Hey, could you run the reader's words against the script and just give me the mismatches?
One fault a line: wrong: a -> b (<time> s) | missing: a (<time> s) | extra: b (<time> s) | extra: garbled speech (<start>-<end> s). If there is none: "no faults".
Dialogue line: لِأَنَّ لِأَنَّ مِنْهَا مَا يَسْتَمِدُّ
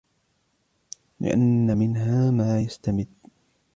missing: لِأَنَّ (1.8 s)